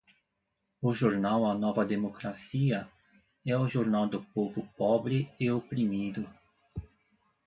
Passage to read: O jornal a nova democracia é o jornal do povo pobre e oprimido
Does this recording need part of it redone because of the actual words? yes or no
no